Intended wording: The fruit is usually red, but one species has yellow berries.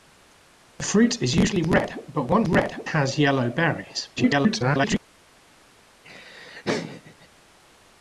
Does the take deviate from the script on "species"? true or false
true